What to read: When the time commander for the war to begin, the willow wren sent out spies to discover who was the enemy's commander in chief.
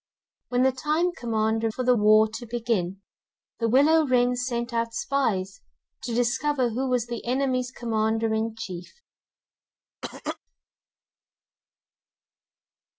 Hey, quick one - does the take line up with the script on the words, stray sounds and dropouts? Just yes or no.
no